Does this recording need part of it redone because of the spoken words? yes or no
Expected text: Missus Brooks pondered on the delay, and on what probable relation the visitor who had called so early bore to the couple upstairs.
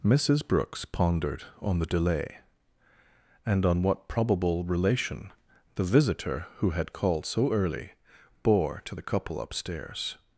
no